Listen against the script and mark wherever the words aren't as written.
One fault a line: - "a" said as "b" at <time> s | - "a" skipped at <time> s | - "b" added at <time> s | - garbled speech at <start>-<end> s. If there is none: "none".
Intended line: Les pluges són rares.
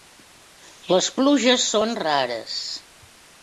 none